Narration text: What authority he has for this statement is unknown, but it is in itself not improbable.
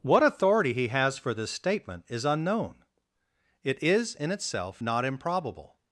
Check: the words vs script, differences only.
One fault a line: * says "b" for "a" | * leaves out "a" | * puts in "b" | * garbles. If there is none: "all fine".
* leaves out "but"